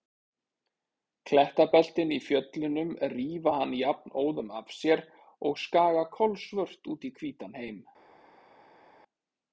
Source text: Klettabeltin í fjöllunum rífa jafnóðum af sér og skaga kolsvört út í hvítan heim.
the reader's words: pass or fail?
fail